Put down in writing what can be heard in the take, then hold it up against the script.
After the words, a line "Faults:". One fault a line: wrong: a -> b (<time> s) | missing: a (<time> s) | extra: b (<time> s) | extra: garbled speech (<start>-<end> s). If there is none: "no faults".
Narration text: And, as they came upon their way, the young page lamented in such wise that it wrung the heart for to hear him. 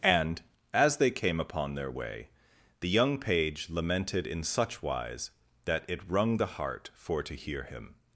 And, as they came upon their way, the young page lamented in such wise that it wrung the heart for to hear him.
Faults:
no faults